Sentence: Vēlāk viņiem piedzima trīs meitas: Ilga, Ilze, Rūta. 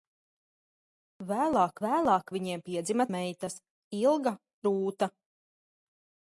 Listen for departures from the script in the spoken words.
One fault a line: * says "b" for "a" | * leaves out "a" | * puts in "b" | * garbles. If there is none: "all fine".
* puts in "vēlāk"
* leaves out "trīs"
* leaves out "Ilze"